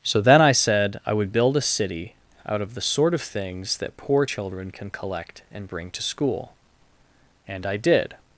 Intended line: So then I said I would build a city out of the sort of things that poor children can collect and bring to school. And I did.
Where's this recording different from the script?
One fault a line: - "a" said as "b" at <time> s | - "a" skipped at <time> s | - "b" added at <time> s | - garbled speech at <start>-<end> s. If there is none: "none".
none